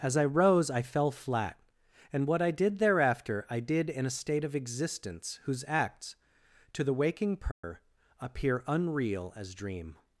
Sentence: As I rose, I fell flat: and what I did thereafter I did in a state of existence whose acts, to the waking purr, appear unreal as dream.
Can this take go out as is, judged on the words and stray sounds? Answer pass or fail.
fail